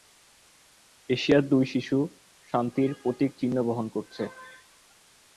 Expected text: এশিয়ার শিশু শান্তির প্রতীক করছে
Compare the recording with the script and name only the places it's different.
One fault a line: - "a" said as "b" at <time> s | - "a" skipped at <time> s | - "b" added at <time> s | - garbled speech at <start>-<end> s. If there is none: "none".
- "দুই" added at 1.5 s
- "চিহ্ন বহন" added at 3.4 s